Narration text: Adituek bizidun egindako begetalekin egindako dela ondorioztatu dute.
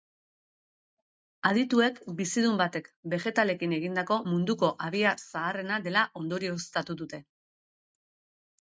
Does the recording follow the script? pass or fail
fail